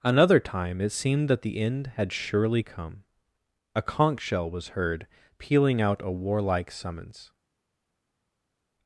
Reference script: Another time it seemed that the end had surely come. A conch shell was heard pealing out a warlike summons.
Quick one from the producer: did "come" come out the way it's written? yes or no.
yes